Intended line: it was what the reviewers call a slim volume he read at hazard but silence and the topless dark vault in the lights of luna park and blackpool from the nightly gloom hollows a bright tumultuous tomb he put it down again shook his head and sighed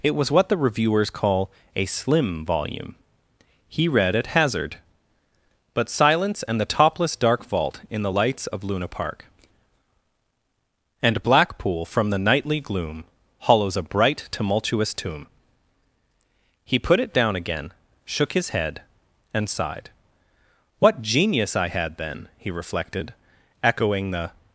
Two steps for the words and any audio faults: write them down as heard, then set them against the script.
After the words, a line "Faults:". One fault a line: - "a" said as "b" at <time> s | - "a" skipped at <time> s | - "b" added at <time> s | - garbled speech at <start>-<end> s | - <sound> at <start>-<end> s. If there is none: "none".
it was what the reviewers call a slim volume he read at hazard but silence and the topless dark vault in the lights of luna park and blackpool from the nightly gloom hollows a bright tumultuous tomb he put it down again shook his head and sighed what genius i had then he reflected echoing the
Faults:
- "what genius i had then he reflected echoing the" added at 20.8 s